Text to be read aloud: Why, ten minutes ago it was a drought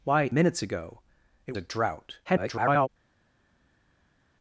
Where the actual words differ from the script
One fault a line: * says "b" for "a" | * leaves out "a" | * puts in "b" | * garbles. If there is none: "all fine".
* leaves out "ten"
* leaves out "was"
* garbles